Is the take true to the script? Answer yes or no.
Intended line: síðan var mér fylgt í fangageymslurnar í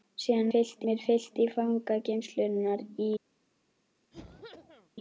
no